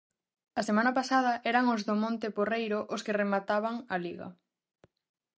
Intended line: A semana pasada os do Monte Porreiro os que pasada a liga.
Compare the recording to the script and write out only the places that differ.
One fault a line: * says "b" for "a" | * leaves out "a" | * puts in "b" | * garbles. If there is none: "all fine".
* puts in "eran"
* says "remataban" for "pasada"